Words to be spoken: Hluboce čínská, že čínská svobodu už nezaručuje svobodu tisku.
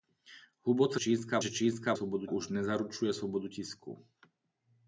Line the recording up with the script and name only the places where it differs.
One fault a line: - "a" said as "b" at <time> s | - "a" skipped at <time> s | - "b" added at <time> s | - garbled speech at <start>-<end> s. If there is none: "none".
none